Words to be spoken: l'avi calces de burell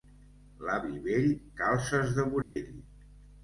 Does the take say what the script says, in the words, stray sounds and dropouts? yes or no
no